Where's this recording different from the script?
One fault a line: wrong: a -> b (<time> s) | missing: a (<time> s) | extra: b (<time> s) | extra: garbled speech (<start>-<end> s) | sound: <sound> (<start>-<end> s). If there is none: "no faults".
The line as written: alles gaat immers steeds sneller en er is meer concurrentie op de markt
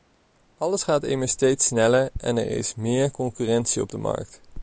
no faults